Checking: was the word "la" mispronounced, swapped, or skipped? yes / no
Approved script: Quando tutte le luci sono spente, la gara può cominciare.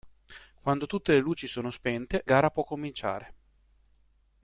yes